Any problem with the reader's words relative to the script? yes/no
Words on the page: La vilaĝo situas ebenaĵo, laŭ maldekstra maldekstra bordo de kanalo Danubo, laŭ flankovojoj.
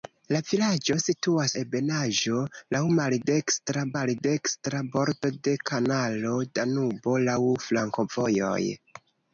no